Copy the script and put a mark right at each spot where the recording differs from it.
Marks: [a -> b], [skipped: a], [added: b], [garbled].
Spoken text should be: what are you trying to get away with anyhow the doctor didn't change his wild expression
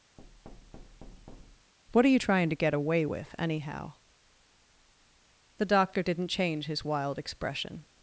what are you trying to get away with anyhow the doctor didn't change his wild expression